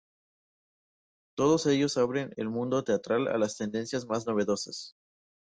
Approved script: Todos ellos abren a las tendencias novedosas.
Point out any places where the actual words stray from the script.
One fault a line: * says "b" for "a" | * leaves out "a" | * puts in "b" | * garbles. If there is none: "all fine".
* puts in "el mundo teatral"
* puts in "más"